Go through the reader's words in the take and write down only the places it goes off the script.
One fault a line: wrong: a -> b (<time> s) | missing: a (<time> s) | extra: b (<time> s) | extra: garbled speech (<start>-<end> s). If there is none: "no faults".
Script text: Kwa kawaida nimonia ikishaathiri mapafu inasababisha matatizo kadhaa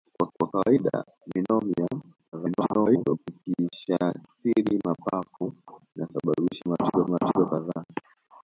extra: kwa (0.4 s)
extra: garbled speech (2.3-3.2 s)
extra: matatizo (7.1 s)